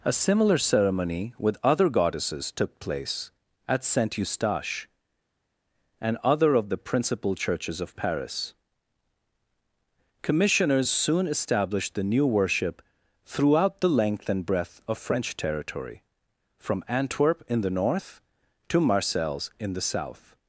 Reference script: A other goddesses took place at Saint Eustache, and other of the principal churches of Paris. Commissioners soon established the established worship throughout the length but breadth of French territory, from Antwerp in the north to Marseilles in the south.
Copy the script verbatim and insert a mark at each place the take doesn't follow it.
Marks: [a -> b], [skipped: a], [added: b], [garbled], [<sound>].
A [added: similar ceremony with] other goddesses took place at Saint Eustache, and other of the principal churches of Paris. Commissioners soon established the [established -> new] worship throughout the length [but -> and] breadth of French territory, from Antwerp in the north to Marseilles in the south.